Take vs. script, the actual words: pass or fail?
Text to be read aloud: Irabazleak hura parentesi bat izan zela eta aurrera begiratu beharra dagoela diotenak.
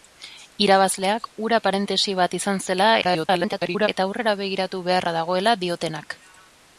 fail